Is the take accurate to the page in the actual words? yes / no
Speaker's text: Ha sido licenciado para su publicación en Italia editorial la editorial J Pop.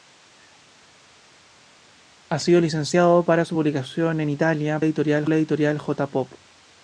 yes